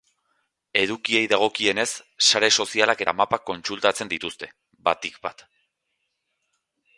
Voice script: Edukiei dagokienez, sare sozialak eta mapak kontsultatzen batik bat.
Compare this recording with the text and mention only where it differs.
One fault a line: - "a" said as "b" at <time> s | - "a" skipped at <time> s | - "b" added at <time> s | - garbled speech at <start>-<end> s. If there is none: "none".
- "dituzte" added at 4.1 s